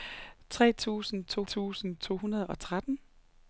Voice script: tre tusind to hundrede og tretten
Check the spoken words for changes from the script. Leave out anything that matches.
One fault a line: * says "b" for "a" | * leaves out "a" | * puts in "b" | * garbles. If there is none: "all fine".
* puts in "tusind to"